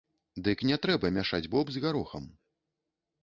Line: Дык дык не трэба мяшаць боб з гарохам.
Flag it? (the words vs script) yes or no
yes